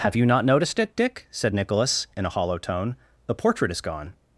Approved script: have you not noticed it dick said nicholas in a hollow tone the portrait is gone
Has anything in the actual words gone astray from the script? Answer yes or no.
no